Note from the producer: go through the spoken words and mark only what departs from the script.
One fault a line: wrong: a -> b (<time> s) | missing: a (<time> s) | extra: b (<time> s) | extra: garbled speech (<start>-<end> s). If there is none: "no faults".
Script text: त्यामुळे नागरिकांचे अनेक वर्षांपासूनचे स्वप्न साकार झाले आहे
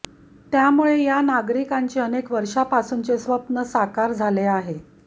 extra: या (1.0 s)